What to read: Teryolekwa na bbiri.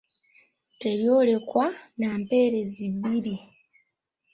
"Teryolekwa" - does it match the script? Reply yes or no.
yes